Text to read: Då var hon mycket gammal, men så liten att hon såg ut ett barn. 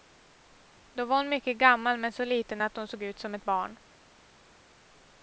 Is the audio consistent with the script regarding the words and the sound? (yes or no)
no